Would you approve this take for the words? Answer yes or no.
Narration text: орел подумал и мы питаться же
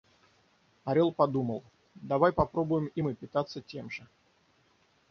no